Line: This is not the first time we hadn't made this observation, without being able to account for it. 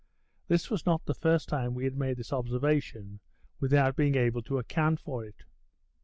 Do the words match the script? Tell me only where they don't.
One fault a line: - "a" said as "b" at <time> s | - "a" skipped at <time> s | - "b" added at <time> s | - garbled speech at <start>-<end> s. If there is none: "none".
- "is" said as "was" at 0.7 s
- "hadn't" said as "had" at 1.8 s